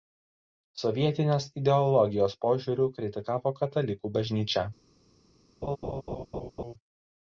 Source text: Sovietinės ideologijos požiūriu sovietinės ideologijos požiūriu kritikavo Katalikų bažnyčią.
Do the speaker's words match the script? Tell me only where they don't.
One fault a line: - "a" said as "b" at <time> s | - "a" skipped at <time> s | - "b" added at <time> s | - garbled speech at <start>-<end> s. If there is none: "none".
- "sovietinės ideologijos požiūriu" skipped at 2.9 s